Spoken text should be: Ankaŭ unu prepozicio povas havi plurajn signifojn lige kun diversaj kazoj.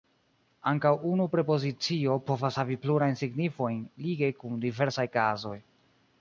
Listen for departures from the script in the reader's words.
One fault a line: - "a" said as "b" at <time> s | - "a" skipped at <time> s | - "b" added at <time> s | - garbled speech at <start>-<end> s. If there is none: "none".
none